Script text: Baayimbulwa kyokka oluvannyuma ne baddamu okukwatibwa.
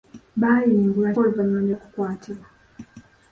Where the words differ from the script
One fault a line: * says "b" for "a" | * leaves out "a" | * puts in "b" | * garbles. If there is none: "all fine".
* leaves out "kyokka"
* leaves out "baddamu"